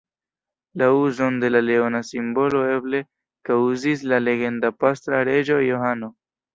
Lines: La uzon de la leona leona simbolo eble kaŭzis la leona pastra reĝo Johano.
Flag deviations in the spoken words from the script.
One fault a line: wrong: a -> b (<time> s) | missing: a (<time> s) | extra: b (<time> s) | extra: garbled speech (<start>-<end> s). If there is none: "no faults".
missing: leona (2.0 s)
wrong: leona -> legenda (4.3 s)